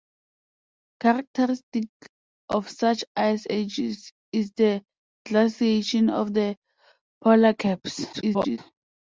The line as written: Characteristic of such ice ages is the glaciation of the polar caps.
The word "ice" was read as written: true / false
true